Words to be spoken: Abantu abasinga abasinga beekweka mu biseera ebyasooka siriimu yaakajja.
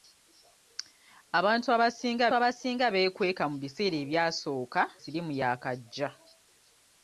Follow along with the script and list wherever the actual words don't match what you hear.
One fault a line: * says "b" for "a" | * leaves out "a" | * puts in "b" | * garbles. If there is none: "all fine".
all fine